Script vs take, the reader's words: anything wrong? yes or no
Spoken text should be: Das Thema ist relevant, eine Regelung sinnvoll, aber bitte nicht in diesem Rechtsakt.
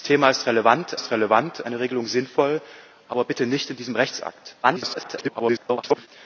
yes